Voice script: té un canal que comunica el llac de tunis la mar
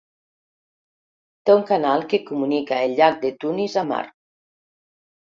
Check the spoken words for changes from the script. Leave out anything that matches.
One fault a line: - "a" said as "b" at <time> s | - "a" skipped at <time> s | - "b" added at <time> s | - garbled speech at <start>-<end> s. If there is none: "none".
none